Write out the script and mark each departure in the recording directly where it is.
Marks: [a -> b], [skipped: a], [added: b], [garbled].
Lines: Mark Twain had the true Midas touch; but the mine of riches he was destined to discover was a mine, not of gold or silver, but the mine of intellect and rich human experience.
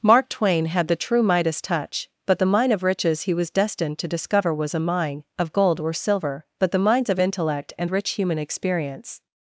Mark Twain had the true Midas touch; but the mine of riches he was destined to discover was a mine, [skipped: not] of gold or silver, but the [mine -> mines] of intellect and rich human experience.